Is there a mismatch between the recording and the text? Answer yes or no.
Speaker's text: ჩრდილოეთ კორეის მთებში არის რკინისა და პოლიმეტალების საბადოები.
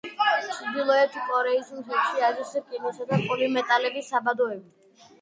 no